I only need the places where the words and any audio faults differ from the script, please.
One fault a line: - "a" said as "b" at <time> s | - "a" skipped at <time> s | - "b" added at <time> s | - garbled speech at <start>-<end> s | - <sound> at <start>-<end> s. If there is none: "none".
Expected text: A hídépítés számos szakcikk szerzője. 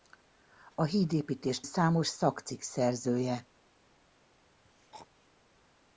- throat clearing at 4.6-5.3 s